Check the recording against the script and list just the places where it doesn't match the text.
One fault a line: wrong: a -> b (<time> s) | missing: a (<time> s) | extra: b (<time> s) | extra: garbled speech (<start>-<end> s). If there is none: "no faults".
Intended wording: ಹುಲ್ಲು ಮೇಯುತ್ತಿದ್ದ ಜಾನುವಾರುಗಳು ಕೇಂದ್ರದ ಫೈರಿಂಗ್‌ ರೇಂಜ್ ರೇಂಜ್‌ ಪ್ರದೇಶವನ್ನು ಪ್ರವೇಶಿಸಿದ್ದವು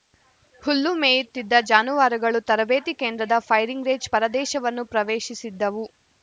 extra: ತರಬೇತಿ (2.5 s)
missing: ರೇಂಜ್ (4.1 s)